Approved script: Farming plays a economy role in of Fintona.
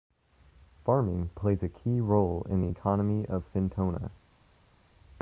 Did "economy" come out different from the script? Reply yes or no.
yes